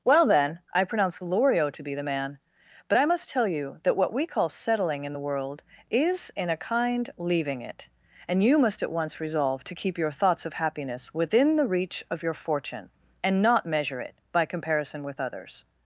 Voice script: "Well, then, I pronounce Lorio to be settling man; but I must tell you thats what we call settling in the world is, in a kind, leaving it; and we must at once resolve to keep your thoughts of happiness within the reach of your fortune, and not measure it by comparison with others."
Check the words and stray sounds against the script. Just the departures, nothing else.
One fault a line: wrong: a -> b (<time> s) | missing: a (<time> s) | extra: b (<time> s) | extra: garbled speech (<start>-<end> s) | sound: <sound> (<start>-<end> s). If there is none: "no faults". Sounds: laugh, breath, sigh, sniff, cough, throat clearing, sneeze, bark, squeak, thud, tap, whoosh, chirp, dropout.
wrong: settling -> the (1.9 s)
wrong: thats -> that (3.8 s)
wrong: we -> you (8.4 s)